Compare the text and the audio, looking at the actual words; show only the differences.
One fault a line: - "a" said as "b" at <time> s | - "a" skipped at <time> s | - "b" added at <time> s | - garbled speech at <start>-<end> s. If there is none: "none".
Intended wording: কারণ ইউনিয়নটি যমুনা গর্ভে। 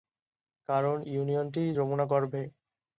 none